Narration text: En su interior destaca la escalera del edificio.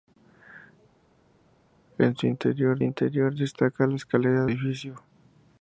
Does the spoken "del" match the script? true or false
false